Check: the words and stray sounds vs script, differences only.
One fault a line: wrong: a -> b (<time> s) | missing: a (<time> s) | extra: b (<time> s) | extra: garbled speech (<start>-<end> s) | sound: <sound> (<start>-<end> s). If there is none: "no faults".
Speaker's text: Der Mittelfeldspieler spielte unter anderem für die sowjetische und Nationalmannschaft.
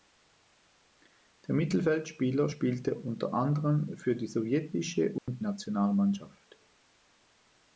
sound: dropout (5.2-5.3 s)